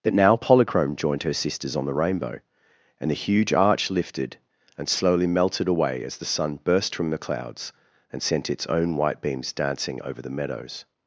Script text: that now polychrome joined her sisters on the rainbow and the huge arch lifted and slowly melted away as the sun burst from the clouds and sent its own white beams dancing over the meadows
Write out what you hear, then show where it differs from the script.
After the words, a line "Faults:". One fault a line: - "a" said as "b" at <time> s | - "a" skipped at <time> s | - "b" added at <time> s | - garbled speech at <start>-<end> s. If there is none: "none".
that now polychrome joined her sisters on the rainbow and the huge arch lifted and slowly melted away as the sun burst from the clouds and sent its own white beams dancing over the meadows
Faults:
none